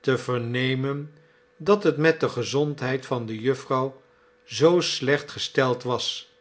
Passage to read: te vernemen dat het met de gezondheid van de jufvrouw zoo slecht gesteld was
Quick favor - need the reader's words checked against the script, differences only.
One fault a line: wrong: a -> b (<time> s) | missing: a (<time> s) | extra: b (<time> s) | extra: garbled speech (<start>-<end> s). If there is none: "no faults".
no faults